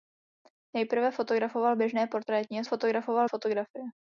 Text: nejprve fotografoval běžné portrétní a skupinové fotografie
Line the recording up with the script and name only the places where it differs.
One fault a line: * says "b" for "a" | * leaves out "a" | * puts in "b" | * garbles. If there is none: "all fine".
* says "fotografoval" for "skupinové"